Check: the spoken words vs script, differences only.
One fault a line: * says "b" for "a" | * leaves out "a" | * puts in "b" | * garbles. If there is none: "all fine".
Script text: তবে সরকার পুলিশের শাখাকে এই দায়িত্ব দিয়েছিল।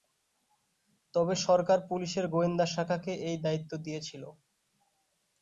* puts in "গোয়েন্দা"